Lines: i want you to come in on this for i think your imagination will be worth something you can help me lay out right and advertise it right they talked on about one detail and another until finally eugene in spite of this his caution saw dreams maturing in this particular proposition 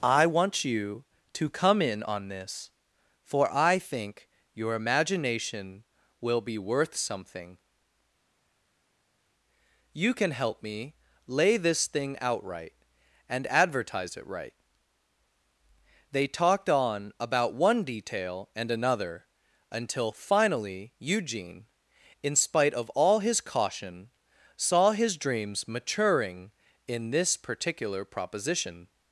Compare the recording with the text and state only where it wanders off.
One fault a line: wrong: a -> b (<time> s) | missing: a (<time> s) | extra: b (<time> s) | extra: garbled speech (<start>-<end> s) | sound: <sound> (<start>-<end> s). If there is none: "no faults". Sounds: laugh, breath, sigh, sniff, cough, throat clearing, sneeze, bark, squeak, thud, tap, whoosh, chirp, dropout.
extra: this thing (11.6 s)
wrong: this -> all (22.9 s)
extra: his (24.9 s)